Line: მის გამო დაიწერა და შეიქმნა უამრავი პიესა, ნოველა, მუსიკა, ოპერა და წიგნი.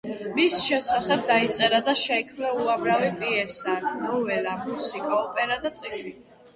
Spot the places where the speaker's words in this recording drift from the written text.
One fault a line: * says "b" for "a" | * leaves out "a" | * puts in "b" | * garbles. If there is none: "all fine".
* says "შესახებ" for "გამო"